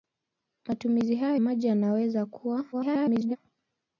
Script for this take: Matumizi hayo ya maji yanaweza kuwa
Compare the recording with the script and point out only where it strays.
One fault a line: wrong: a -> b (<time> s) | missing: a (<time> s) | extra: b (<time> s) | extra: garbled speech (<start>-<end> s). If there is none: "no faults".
missing: ya (1.4 s)
extra: garbled speech (2.7-3.4 s)